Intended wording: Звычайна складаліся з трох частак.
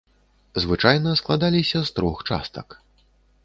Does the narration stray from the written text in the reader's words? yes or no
no